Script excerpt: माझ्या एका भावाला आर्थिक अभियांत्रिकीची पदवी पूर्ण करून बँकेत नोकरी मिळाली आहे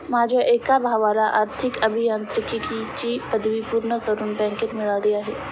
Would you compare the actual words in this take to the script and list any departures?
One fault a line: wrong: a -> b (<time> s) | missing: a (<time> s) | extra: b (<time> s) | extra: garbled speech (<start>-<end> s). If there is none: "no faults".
missing: नोकरी (4.8 s)